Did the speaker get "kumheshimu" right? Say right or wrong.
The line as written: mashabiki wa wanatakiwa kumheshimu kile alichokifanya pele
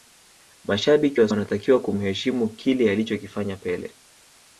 right